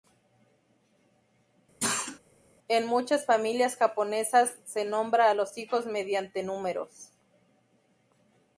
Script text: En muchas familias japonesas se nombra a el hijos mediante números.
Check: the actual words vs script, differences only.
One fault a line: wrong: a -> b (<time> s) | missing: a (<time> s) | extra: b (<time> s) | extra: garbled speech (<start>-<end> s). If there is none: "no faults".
wrong: el -> los (5.3 s)